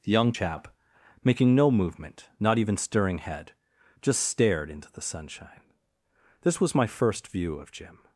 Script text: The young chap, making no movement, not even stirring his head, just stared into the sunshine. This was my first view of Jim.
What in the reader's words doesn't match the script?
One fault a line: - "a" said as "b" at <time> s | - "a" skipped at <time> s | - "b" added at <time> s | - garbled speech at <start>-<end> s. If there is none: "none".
- "his" skipped at 3.2 s